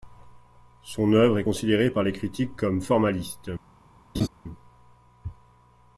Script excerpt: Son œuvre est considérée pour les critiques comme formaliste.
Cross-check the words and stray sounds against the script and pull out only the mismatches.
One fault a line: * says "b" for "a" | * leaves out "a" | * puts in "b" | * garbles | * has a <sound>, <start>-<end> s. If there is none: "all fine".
* says "par" for "pour"
* has a laugh, 4.1-4.3 s